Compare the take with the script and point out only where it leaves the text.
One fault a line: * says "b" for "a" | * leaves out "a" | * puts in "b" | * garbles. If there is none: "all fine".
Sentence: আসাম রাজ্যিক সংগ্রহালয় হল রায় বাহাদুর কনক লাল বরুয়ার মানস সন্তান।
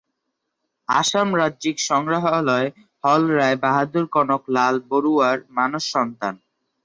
all fine